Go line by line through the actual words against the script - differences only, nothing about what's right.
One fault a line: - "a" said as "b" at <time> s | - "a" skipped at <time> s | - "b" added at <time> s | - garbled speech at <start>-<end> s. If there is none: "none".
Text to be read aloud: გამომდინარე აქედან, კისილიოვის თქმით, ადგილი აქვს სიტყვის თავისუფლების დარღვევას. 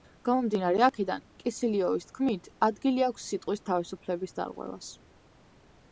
none